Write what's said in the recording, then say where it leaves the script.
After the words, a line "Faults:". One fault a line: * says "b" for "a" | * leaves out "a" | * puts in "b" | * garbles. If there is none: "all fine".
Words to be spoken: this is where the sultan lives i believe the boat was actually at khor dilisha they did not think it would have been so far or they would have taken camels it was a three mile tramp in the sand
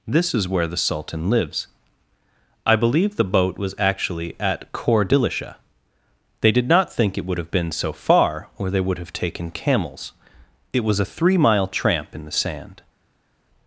this is where the sultan lives i believe the boat was actually at khor dilisha they did not think it would have been so far or they would have taken camels it was a three mile tramp in the sand
Faults:
all fine